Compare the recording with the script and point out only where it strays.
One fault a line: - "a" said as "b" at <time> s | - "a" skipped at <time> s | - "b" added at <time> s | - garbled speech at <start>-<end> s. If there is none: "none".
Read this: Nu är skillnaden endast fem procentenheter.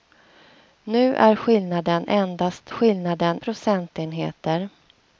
- "fem" said as "skillnaden" at 2.7 s